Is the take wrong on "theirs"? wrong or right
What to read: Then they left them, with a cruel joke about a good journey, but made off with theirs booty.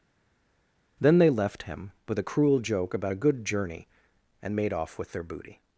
wrong